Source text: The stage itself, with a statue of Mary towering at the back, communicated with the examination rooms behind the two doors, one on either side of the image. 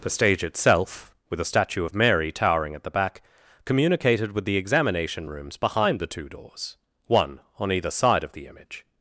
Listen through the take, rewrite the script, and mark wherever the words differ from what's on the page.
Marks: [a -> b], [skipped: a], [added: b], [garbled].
The stage itself, with a statue of Mary towering at the back, communicated with the examination rooms behind the two doors, one on either side of the image.